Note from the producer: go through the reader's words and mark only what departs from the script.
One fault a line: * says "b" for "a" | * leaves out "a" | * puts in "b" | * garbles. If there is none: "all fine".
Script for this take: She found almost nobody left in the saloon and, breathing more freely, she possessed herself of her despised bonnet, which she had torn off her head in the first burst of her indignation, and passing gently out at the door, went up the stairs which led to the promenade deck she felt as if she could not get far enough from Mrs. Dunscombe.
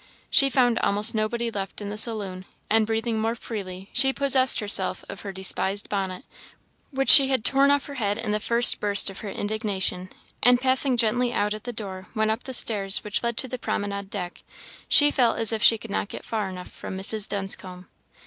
all fine